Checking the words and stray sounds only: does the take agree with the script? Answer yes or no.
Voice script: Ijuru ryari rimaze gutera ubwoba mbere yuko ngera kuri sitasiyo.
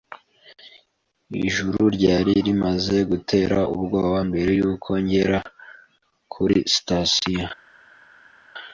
yes